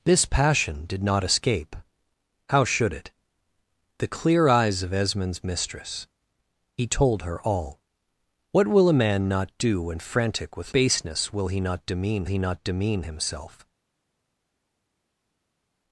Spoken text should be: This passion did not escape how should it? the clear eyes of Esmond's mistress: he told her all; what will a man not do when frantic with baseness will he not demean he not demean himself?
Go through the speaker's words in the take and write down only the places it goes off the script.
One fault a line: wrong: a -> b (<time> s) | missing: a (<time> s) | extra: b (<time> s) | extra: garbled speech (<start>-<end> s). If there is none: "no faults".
no faults